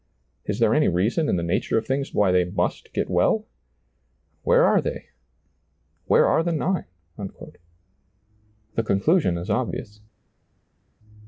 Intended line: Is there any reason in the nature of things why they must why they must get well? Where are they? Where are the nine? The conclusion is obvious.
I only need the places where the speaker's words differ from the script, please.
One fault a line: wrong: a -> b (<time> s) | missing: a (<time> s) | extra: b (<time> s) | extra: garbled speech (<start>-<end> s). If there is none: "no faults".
missing: why they must (2.9 s)